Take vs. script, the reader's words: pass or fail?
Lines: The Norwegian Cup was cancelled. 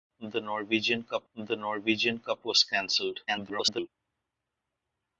fail